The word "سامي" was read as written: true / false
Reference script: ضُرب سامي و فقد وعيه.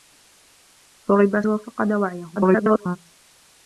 false